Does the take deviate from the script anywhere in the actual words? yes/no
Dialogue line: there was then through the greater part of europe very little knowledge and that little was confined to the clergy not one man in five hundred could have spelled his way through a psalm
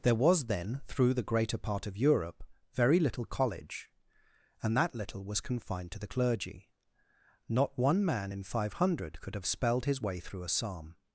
yes